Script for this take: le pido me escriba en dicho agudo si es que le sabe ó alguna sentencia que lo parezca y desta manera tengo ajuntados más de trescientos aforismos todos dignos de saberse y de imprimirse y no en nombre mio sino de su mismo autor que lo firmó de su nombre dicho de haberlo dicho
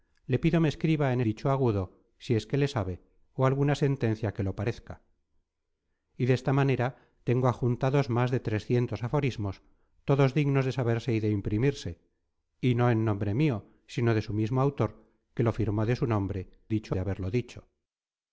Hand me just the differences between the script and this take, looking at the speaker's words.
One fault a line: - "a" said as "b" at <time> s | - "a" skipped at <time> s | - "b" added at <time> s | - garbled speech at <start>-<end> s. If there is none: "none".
none